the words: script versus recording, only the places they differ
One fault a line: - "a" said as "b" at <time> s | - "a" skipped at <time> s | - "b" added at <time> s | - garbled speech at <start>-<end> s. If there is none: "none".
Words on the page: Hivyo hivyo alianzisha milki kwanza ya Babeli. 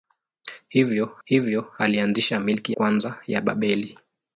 none